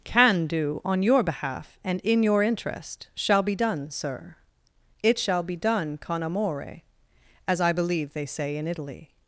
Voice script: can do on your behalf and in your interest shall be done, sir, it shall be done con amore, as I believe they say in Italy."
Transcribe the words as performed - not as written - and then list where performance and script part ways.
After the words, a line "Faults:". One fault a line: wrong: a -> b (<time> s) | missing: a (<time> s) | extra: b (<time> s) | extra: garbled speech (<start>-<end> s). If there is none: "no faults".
can do on your behalf and in your interest shall be done, sir, it shall be done con amore, as I believe they say in Italy."
Faults:
no faults